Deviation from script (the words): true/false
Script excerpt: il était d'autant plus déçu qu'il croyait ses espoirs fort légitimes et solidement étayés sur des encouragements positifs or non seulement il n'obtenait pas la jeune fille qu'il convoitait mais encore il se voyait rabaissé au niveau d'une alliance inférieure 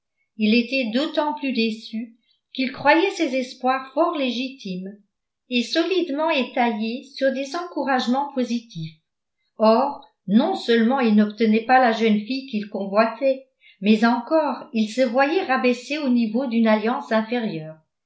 false